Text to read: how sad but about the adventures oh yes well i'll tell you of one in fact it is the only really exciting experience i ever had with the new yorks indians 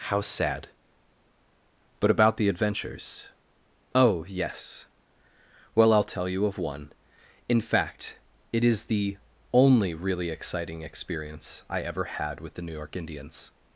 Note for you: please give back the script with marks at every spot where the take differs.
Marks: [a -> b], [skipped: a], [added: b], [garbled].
how sad but about the adventures oh yes well i'll tell you of one in fact it is the only really exciting experience i ever had with the new [yorks -> york] indians